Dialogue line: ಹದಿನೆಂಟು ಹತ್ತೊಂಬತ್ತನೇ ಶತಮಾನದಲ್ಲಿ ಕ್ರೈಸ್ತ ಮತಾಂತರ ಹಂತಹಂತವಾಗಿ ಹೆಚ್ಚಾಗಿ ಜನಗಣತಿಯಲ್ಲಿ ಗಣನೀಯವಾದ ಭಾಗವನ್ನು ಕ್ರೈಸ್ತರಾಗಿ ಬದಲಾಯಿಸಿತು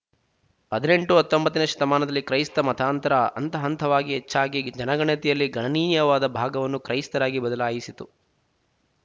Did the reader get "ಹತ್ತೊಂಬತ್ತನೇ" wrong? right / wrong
right